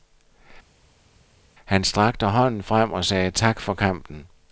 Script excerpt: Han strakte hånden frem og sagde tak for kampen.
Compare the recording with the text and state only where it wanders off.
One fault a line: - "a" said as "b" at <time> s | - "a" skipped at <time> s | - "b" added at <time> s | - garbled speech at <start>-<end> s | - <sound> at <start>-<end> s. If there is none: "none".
none